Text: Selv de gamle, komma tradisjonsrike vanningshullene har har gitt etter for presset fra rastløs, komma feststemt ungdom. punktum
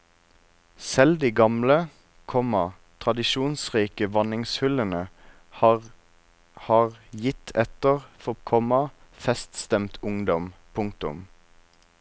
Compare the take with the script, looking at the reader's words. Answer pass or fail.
fail